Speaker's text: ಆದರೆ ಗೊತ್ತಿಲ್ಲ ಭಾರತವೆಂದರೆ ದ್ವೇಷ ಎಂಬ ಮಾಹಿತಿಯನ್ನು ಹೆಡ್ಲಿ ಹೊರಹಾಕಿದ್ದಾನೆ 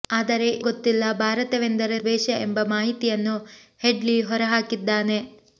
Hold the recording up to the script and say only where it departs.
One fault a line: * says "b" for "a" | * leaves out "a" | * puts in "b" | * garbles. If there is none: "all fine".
all fine